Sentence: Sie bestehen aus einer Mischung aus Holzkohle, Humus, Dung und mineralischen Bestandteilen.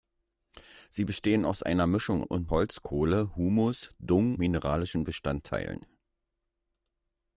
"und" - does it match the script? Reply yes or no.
no